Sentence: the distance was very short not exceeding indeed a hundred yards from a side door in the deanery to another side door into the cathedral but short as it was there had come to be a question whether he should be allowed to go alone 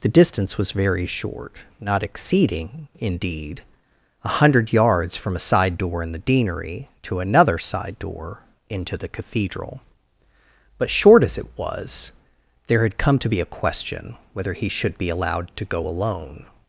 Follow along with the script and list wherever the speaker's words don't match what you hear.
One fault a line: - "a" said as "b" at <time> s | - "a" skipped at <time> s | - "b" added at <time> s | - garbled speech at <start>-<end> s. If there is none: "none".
none